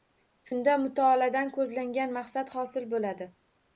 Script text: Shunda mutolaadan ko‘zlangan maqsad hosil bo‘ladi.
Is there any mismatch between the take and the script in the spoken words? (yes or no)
no